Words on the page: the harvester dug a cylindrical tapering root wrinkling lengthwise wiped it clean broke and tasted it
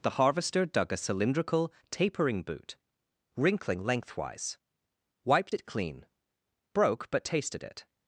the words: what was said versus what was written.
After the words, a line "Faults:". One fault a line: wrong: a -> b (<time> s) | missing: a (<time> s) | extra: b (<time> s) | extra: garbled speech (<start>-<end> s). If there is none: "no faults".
the harvester dug a cylindrical tapering boot wrinkling lengthwise wiped it clean broke but tasted it
Faults:
wrong: root -> boot (2.4 s)
wrong: and -> but (7.1 s)